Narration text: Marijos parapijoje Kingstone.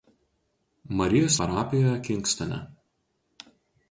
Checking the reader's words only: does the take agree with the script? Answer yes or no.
yes